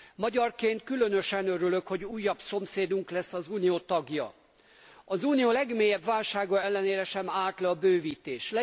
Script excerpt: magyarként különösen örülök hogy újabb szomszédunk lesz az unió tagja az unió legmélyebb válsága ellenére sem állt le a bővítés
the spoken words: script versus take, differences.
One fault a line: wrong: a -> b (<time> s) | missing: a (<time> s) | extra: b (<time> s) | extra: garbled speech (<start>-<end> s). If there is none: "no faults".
no faults